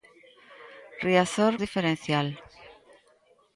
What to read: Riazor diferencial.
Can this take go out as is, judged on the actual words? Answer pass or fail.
pass